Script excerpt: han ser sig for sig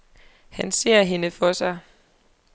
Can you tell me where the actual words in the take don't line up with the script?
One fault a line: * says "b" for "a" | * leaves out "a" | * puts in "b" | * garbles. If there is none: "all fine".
* says "hende" for "sig"